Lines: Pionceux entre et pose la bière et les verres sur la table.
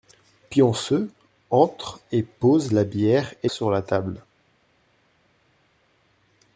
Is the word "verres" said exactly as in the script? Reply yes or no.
no